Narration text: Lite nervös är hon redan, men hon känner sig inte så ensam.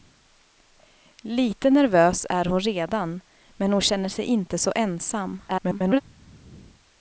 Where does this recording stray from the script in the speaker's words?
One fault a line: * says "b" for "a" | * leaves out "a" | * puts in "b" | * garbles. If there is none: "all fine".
* garbles